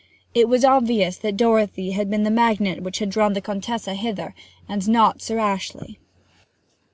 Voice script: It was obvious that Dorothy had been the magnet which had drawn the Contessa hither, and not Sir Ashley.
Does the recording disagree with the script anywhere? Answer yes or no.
no